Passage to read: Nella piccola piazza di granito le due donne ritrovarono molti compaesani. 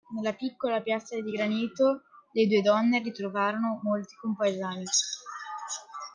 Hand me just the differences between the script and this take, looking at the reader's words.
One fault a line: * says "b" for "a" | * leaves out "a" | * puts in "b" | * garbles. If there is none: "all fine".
all fine